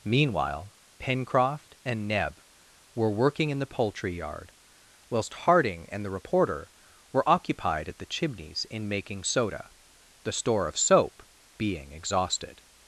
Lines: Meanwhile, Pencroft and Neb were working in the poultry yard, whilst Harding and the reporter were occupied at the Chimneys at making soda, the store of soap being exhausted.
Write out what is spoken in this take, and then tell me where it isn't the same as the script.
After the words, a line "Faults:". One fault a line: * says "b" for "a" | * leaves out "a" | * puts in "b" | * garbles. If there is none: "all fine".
Meanwhile, Pencroft and Neb were working in the poultry yard, whilst Harding and the reporter were occupied at the Chimneys in making soda, the store of soap being exhausted.
Faults:
* says "in" for "at"